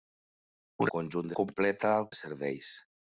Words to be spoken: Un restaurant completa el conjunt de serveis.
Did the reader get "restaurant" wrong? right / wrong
wrong